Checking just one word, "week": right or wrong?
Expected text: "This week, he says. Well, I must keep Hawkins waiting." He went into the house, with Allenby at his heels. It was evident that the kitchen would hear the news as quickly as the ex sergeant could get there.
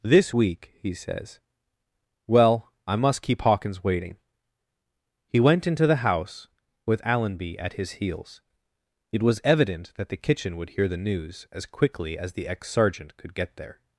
right